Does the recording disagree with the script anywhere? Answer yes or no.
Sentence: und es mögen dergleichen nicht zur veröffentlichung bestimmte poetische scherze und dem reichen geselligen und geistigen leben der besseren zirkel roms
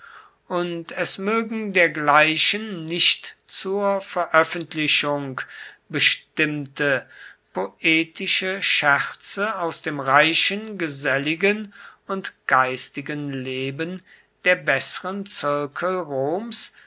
yes